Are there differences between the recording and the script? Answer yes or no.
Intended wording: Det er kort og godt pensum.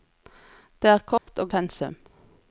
yes